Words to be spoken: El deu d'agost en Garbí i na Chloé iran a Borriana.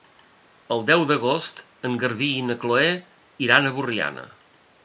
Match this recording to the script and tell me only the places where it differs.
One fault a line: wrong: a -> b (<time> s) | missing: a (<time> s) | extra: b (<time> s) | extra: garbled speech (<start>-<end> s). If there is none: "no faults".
no faults